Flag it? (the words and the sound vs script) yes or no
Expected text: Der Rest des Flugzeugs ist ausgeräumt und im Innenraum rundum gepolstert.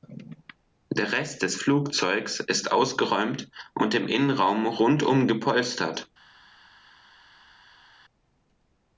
no